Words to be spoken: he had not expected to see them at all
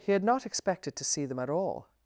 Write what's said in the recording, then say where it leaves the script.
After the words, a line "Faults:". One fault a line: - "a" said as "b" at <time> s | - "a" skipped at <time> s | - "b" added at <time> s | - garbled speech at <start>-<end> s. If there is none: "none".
he had not expected to see them at all
Faults:
none